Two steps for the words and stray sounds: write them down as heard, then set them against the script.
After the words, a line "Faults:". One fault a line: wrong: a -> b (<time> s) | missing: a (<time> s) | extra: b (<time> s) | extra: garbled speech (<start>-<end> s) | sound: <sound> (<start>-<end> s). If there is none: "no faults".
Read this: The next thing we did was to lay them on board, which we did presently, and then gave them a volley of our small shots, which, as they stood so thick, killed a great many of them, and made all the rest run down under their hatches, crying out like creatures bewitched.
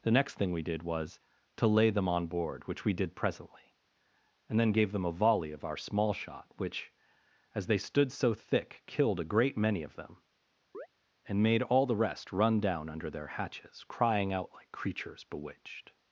The next thing we did was to lay them on board, which we did presently, and then gave them a volley of our small shot, which, as they stood so thick, killed a great many of them, and made all the rest run down under their hatches, crying out like creatures bewitched.
Faults:
wrong: shots -> shot (6.1 s)
sound: chirp (10.7-10.9 s)